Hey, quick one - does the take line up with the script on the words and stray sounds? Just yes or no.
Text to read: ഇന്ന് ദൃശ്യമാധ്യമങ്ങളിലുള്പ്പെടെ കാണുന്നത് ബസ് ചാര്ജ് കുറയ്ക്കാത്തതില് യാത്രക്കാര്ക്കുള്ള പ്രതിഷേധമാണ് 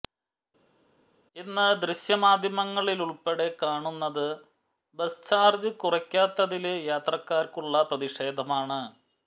yes